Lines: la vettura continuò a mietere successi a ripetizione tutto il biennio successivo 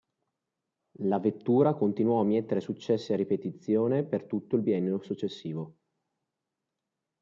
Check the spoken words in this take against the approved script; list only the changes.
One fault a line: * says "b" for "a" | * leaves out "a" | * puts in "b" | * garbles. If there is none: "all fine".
* puts in "per"